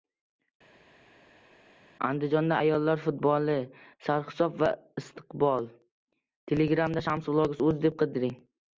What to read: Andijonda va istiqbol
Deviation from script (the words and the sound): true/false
true